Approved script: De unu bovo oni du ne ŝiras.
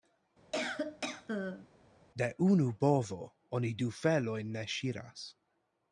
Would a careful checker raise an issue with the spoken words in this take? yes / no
yes